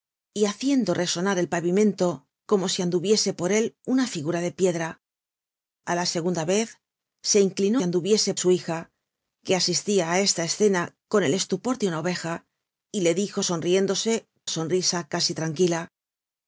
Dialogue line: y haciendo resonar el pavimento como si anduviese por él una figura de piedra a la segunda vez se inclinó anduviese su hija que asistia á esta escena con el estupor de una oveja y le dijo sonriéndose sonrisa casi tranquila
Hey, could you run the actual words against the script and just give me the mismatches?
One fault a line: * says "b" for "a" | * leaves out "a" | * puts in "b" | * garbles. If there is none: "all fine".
all fine